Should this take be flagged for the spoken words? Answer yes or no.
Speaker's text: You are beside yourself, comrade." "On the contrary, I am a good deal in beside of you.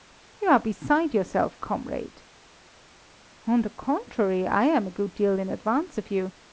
yes